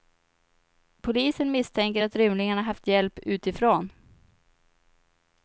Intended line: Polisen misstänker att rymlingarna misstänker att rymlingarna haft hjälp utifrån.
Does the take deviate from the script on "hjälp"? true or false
false